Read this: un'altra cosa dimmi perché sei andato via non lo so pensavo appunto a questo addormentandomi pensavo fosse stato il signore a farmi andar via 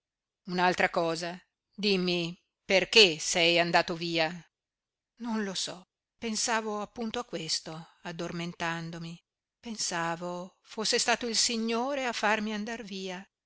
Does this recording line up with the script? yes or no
yes